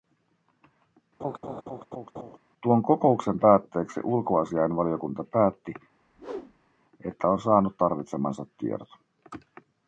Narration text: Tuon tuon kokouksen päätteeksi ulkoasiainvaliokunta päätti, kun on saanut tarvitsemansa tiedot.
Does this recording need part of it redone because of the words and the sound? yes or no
yes